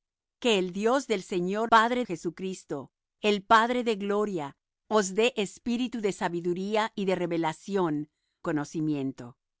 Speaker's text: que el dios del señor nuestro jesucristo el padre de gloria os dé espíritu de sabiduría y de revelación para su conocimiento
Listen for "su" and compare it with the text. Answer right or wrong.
wrong